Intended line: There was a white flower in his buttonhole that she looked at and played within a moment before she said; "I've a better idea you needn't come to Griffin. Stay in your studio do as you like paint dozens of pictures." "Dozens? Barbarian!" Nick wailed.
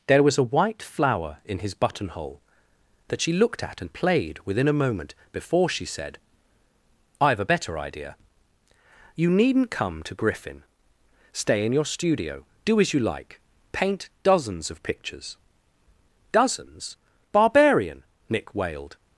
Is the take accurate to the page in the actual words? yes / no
yes